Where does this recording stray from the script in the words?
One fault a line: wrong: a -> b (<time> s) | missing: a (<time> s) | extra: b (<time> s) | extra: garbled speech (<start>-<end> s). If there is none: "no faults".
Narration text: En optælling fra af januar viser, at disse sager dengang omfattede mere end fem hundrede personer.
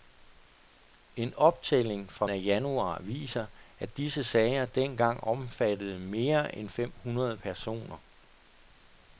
no faults